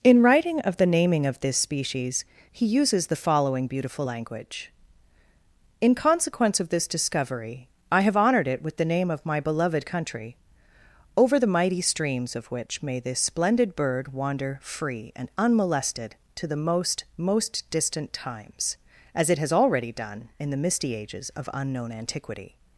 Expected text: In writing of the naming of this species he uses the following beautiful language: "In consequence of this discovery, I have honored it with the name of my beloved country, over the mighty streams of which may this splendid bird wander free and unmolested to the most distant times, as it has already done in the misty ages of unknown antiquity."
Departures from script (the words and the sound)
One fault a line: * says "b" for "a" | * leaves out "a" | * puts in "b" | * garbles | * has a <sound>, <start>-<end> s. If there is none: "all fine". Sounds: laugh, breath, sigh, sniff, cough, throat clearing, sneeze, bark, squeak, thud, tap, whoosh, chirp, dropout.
* puts in "most"